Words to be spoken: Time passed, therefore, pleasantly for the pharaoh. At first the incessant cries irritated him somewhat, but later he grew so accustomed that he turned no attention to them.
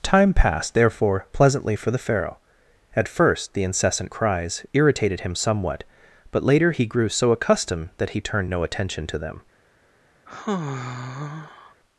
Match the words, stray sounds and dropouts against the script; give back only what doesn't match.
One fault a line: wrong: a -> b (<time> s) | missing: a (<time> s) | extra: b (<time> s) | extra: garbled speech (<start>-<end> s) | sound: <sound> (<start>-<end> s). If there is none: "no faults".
sound: sigh (10.3-11.7 s)